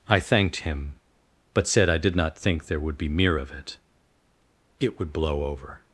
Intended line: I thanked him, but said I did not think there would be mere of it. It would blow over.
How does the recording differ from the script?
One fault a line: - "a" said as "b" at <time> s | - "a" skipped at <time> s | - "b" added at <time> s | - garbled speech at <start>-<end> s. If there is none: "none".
none